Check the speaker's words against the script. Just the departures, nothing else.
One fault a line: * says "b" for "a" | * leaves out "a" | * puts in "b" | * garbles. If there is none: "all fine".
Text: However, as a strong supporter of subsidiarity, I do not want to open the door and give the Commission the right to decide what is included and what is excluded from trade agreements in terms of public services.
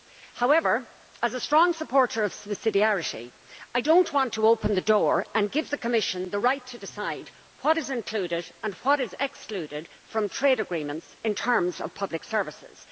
all fine